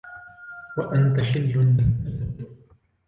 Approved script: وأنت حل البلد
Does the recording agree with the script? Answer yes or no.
yes